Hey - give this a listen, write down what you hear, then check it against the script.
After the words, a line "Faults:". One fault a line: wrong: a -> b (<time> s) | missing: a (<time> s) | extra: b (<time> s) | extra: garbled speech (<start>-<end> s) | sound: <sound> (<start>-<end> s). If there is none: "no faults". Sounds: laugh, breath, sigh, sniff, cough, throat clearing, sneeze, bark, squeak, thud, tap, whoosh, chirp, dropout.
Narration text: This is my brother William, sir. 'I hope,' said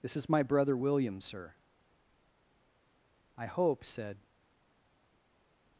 This is my brother William, sir. 'I hope,' said
Faults:
no faults